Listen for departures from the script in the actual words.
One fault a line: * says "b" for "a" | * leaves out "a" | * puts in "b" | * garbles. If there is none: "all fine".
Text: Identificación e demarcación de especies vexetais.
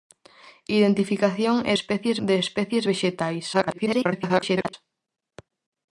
* says "especies" for "demarcación"
* garbles